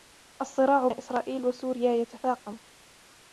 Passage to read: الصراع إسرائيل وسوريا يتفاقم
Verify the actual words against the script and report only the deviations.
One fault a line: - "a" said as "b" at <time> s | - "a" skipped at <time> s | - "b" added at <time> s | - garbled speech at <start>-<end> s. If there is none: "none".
none